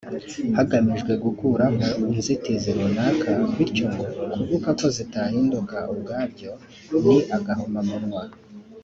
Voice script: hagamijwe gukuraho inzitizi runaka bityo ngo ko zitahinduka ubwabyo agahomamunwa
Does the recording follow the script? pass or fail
fail